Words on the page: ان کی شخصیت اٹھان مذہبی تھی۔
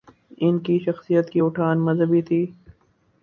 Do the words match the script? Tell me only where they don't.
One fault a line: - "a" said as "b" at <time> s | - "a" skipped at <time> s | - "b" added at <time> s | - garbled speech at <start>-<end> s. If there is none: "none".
- "کی" added at 1.3 s